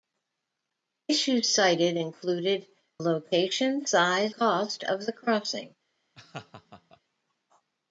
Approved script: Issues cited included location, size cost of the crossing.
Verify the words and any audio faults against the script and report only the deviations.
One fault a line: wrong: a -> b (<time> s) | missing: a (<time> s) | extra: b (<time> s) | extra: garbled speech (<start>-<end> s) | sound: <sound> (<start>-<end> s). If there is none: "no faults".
sound: laugh (6.1-7.0 s)